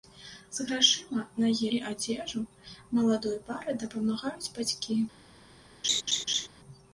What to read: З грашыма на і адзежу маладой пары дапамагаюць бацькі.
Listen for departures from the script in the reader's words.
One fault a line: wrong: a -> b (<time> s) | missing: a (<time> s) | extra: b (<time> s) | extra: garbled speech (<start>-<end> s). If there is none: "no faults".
no faults